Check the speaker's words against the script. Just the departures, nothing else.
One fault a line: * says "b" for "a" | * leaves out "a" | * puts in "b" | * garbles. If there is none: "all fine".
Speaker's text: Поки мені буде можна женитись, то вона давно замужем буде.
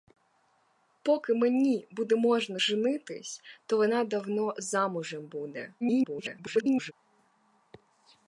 * garbles